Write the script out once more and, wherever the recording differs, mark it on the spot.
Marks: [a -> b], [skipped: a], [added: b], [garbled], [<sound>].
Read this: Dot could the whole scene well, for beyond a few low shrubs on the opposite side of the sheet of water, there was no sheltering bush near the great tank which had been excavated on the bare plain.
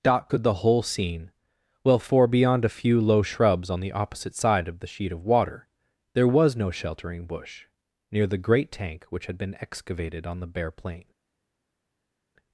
Dot could the whole scene well, for beyond a few low shrubs on the opposite side of the sheet of water, there was no sheltering bush near the great tank which had been excavated on the bare plain.